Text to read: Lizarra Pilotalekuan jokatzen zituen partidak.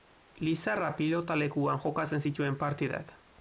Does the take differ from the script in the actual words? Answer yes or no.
no